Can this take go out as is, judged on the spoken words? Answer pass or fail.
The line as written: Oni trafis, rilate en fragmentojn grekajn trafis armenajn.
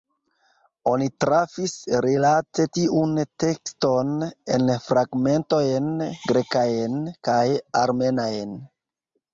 fail